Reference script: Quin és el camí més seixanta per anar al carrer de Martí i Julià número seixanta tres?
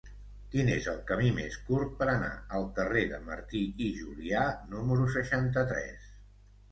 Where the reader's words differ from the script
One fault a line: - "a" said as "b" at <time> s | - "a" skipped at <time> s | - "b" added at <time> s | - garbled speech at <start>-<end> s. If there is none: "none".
- "seixanta" said as "curt" at 1.7 s